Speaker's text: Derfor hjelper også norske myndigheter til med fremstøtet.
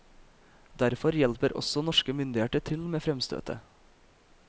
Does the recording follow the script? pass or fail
pass